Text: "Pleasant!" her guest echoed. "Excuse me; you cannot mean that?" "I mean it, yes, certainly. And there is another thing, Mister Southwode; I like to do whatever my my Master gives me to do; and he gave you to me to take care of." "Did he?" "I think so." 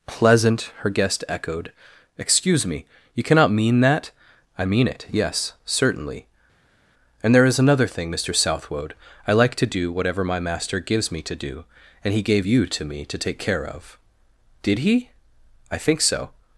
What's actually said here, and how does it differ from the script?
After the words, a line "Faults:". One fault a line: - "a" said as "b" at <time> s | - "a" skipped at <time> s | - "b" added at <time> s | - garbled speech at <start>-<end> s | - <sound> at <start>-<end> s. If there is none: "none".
"Pleasant!" her guest echoed. "Excuse me; you cannot mean that?" "I mean it, yes, certainly. And there is another thing, Mister Southwode; I like to do whatever my Master gives me to do; and he gave you to me to take care of." "Did he?" "I think so."
Faults:
- "my" skipped at 10.4 s